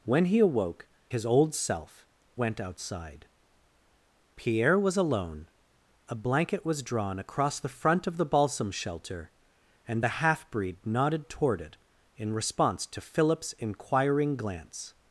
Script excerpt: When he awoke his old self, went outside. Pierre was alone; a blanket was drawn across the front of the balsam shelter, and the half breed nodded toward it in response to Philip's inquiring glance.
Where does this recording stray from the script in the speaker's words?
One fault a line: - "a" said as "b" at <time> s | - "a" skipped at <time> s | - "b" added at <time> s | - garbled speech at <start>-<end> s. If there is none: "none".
none